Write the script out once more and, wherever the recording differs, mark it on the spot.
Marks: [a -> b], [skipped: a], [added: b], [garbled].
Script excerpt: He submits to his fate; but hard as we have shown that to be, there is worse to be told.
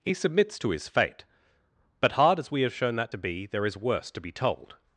He submits to his fate; but hard as we have shown that to be, there is worse to be told.